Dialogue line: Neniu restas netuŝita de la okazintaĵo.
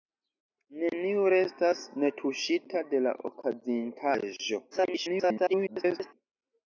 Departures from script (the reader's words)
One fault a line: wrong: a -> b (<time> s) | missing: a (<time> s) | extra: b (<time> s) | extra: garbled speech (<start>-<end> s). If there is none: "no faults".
extra: garbled speech (4.7-6.1 s)